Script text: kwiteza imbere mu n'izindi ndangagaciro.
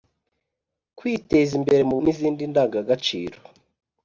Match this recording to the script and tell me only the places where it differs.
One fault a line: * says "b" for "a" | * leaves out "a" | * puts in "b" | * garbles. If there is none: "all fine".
all fine